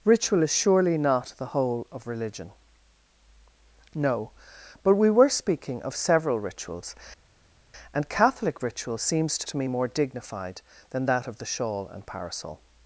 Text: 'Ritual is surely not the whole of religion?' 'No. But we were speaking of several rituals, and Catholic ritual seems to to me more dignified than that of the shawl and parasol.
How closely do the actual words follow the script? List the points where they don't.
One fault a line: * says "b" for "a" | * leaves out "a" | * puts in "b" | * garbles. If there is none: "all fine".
all fine